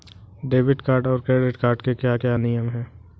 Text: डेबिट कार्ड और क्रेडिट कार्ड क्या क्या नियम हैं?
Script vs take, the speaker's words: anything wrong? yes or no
yes